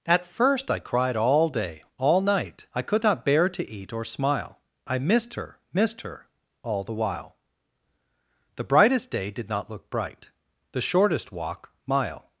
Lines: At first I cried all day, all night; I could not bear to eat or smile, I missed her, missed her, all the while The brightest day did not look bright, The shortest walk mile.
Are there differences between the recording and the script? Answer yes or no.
no